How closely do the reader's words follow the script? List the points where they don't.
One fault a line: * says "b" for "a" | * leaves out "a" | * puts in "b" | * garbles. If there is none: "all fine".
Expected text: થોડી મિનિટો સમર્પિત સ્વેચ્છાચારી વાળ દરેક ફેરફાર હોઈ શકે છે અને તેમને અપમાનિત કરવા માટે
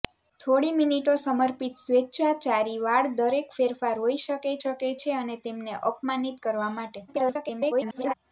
* puts in "શકે"
* garbles